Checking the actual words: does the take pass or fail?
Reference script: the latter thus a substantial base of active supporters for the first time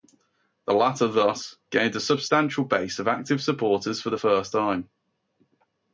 fail